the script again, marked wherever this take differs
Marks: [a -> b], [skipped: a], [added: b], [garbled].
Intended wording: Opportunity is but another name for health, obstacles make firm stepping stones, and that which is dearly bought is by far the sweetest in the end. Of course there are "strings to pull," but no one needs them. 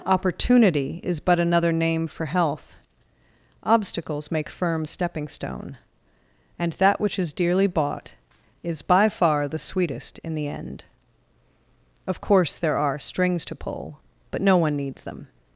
Opportunity is but another name for health, obstacles make firm stepping [stones, -> stone] and that which is dearly bought is by far the sweetest in the end. Of course there are "strings to pull," but no one needs them.